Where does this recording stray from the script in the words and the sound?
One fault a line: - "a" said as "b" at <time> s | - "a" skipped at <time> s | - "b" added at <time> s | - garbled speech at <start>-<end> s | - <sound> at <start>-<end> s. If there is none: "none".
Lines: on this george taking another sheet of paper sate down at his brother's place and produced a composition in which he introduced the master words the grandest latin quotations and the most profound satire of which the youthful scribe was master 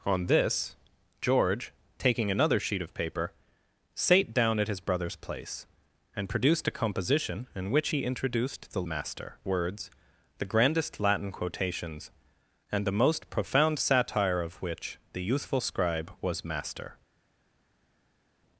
none